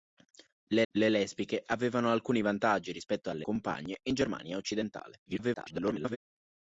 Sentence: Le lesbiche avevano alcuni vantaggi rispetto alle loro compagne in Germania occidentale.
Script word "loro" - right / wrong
wrong